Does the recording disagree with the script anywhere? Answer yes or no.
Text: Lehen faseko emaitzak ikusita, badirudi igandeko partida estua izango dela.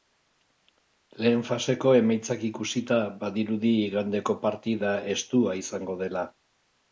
no